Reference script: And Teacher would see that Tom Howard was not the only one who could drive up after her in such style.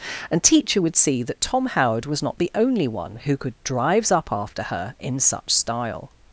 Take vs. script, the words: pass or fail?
fail